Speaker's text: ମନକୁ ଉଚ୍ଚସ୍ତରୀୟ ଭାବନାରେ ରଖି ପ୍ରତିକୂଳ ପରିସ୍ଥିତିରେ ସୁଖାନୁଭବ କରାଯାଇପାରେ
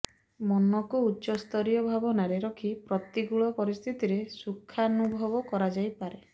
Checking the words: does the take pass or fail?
pass